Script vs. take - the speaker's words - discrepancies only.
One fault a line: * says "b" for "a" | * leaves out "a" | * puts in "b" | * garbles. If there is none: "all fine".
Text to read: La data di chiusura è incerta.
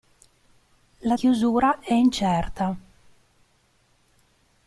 * leaves out "data di"